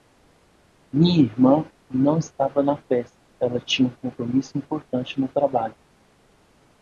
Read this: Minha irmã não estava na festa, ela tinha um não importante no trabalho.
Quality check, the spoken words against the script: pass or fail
fail